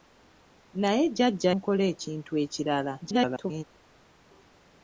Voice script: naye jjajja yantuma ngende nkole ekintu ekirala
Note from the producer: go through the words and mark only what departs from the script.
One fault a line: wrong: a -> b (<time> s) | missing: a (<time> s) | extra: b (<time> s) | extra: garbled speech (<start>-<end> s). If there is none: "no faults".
missing: yantuma ngende (1.5 s)
extra: garbled speech (3.0-3.6 s)